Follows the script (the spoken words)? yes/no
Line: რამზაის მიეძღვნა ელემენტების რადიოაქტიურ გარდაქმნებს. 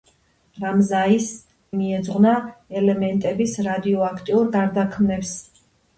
yes